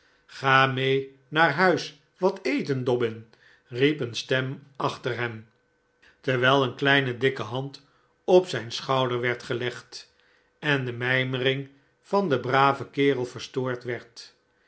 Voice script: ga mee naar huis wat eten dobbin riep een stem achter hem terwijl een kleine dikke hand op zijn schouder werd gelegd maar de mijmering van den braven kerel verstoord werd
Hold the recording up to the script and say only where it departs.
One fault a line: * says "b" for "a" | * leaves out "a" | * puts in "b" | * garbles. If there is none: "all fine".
* says "en" for "maar"